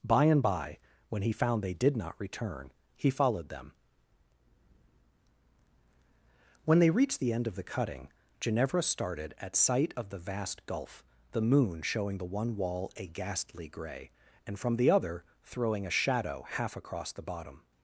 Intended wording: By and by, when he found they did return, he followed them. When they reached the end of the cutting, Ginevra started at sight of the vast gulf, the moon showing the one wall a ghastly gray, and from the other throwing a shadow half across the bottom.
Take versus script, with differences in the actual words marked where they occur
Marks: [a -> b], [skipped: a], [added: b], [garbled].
By and by, when he found they did [added: not] return, he followed them. When they reached the end of the cutting, Ginevra started at sight of the vast gulf, the moon showing the one wall a ghastly gray, and from the other throwing a shadow half across the bottom.